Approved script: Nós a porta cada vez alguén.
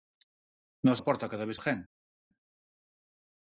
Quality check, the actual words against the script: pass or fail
pass